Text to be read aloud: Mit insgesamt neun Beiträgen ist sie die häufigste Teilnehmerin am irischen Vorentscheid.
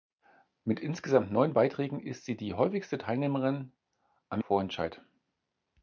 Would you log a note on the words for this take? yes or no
yes